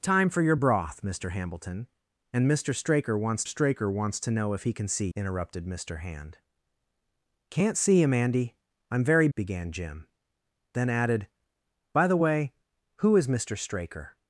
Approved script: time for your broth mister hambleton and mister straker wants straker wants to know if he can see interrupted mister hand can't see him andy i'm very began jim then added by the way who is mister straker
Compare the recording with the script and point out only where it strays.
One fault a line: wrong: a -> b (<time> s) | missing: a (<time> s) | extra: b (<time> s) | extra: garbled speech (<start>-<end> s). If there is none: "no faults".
no faults